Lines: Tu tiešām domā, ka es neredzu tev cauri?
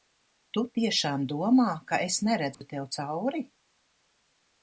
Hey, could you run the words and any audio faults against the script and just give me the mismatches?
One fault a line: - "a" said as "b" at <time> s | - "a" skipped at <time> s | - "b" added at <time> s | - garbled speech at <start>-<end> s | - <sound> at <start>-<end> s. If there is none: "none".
- dropout at 2.5-2.6 s